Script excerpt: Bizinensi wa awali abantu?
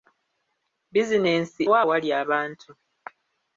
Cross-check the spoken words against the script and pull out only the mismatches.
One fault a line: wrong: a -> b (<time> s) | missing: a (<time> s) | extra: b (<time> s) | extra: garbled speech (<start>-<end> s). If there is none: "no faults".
no faults